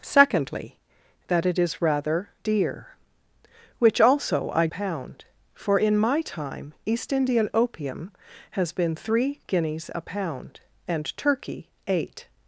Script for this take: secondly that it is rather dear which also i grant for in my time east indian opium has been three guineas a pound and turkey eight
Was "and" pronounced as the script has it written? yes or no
yes